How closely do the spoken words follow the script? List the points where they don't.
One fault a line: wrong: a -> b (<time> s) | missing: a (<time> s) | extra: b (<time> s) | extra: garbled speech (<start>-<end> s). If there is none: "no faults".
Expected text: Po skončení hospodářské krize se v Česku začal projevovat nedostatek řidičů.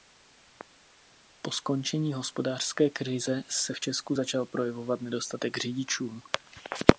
no faults